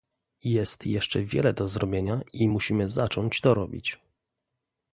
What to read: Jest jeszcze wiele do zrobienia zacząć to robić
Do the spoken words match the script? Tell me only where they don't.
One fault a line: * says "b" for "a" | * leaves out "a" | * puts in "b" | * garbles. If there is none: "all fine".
* puts in "i musimy"